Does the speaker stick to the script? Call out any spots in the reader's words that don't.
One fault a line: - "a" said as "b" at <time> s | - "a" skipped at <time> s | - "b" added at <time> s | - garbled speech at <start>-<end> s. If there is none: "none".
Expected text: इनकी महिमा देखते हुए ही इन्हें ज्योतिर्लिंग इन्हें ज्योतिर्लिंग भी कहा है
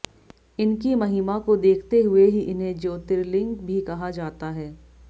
- "को" added at 1.4 s
- "इन्हें ज्योतिर्लिंग" skipped at 3.5 s
- "जाता" added at 4.1 s